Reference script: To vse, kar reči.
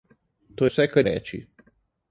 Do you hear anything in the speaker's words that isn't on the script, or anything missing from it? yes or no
no